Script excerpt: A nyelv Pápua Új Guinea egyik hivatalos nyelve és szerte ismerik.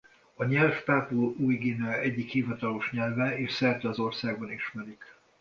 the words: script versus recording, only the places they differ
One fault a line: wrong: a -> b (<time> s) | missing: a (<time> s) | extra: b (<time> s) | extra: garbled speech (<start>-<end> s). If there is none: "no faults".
extra: az országban (3.9 s)